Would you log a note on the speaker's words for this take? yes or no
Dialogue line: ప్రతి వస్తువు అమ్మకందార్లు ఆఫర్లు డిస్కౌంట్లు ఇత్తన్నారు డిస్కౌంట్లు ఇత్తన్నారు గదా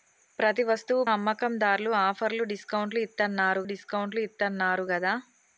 no